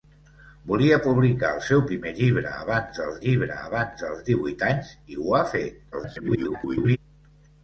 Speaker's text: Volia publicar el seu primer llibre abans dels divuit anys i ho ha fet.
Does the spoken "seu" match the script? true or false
true